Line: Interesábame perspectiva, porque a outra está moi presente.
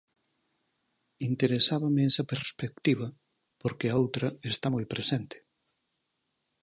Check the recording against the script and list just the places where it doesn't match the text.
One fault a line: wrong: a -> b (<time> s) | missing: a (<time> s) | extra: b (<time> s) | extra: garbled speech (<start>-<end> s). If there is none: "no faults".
extra: esa (2.1 s)